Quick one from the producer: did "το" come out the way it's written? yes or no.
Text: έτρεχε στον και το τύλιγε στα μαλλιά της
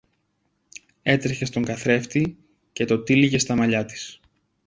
yes